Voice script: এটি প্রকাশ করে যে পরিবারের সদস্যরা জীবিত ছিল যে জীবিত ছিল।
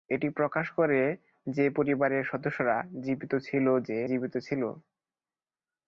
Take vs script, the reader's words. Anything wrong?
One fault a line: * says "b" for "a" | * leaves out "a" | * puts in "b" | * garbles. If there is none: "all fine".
all fine